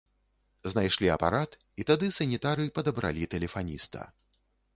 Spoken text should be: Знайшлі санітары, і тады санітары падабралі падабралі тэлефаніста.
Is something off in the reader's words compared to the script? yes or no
yes